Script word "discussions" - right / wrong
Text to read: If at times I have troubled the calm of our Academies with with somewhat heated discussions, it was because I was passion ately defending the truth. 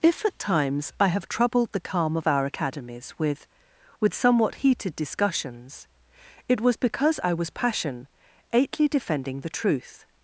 right